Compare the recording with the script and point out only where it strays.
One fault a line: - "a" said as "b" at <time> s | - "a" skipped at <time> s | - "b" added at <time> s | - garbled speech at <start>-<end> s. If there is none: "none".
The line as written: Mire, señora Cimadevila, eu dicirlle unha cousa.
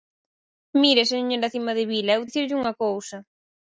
none